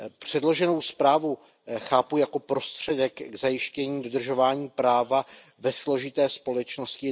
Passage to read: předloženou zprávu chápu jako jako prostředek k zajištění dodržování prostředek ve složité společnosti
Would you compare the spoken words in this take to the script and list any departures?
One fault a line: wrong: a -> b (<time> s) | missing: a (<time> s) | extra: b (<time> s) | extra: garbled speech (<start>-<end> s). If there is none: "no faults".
missing: jako (2.4 s)
wrong: prostředek -> práva (4.7 s)